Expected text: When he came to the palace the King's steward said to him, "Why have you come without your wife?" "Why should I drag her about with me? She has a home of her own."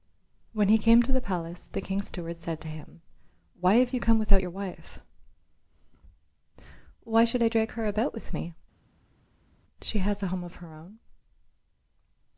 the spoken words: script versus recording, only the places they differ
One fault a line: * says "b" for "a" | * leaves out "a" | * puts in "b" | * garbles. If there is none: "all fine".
all fine